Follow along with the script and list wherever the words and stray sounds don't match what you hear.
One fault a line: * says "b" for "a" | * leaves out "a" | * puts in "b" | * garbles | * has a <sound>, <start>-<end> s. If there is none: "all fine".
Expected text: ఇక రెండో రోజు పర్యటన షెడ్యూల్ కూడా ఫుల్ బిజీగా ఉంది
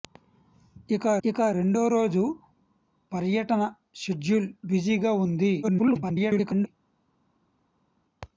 * puts in "ఇక"
* leaves out "కూడా ఫుల్"
* garbles